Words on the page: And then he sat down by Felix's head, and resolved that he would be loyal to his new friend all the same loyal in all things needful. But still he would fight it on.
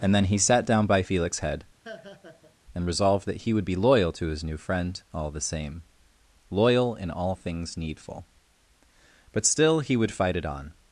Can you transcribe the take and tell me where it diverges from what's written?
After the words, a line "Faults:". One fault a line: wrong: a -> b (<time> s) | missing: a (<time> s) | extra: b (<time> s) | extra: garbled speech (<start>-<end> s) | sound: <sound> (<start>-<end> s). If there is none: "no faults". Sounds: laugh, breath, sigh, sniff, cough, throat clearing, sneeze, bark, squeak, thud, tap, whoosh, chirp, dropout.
And then he sat down by Felix's head, and resolved that he would be loyal to his new friend all the same loyal in all things needful. But still he would fight it on.
Faults:
sound: laugh (1.8-2.6 s)